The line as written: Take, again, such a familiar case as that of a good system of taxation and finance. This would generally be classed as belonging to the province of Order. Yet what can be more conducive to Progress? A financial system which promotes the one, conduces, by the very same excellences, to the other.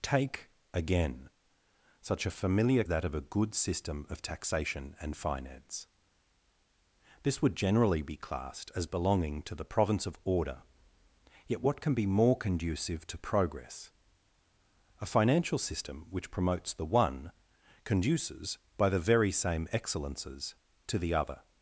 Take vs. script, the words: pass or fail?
fail